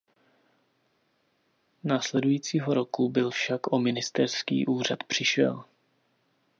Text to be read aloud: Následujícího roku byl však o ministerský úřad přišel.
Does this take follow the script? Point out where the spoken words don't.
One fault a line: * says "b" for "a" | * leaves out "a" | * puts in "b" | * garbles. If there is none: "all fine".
all fine